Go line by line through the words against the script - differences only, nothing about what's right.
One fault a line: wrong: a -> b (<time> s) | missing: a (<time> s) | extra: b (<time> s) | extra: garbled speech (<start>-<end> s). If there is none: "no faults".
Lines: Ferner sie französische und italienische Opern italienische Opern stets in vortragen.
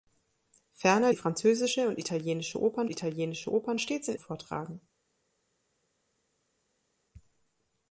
no faults